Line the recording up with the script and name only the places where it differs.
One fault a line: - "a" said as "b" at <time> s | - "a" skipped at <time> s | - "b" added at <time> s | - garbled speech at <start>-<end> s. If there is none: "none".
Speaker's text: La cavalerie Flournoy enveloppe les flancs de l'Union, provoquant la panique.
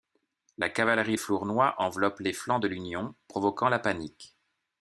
none